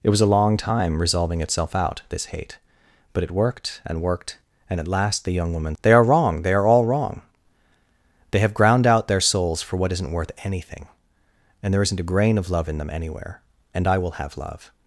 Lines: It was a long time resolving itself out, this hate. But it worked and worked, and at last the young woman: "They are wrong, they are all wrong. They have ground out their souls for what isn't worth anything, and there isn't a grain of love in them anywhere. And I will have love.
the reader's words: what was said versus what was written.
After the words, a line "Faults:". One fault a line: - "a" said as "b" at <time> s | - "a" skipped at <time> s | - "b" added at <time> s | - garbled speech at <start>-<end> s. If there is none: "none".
It was a long time resolving itself out, this hate. But it worked and worked, and at last the young woman: "They are wrong, they are all wrong. They have ground out their souls for what isn't worth anything, and there isn't a grain of love in them anywhere. And I will have love.
Faults:
none